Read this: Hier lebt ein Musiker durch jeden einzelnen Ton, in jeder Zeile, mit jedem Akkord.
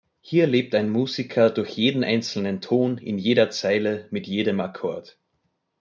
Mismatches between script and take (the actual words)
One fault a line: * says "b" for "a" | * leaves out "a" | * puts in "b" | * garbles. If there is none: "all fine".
all fine